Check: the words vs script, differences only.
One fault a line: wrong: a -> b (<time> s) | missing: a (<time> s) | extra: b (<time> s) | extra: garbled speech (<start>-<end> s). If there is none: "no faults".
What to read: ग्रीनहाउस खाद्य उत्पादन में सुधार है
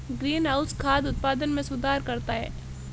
extra: करता (2.0 s)